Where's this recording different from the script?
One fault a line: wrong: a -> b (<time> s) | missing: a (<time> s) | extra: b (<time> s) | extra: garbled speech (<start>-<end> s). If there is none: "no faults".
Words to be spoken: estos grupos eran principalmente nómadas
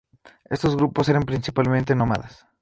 no faults